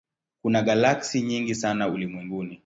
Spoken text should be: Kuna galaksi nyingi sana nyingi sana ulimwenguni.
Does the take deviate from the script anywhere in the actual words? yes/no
yes